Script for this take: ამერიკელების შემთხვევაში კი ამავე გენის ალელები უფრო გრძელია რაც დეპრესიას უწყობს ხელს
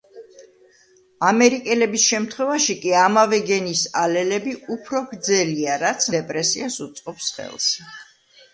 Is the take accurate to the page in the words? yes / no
yes